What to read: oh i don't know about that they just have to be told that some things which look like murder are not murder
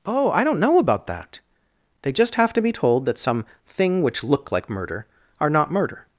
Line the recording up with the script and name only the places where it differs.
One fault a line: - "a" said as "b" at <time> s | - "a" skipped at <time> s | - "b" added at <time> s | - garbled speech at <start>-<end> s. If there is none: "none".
- "things" said as "thing" at 3.7 s